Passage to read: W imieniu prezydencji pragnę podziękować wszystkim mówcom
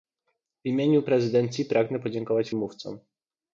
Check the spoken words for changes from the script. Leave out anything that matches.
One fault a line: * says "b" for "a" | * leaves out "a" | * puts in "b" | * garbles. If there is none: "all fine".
* leaves out "wszystkim"